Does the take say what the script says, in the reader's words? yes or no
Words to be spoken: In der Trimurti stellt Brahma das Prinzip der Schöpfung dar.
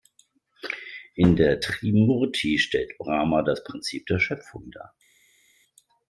yes